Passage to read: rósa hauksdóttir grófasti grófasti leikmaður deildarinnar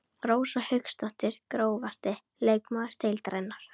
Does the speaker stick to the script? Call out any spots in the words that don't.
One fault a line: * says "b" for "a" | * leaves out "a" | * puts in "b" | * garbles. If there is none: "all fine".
* leaves out "grófasti"